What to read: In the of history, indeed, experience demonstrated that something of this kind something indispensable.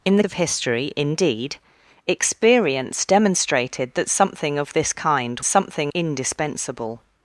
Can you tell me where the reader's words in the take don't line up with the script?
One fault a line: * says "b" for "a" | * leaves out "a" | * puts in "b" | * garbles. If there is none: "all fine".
all fine